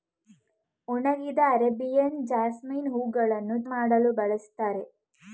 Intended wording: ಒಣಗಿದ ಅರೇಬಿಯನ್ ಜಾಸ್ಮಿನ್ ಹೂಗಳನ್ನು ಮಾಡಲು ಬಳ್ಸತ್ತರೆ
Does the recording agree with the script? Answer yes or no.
yes